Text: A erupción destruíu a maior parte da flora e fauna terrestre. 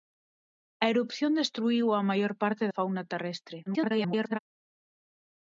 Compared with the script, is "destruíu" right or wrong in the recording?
right